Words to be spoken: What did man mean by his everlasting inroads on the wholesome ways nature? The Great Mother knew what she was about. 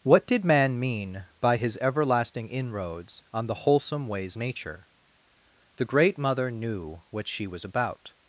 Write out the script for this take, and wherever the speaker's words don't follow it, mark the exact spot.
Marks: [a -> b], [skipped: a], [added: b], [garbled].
What did man mean by his everlasting inroads on the wholesome ways nature? The Great Mother knew what she was about.